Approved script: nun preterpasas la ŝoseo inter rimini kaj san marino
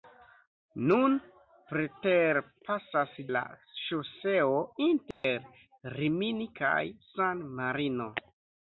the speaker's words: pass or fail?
pass